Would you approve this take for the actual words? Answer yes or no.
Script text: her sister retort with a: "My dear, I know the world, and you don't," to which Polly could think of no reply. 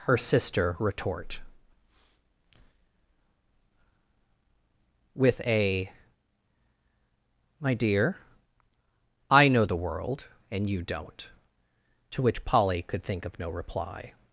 yes